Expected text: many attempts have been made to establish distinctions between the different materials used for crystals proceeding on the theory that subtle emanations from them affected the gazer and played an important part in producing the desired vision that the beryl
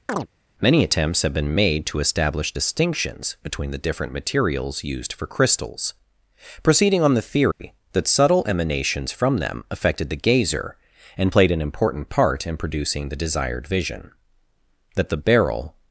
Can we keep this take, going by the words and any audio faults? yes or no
no